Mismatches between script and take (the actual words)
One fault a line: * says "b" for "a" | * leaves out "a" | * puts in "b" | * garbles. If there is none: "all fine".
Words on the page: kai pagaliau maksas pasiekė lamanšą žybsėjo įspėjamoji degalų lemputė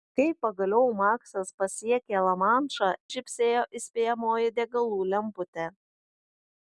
all fine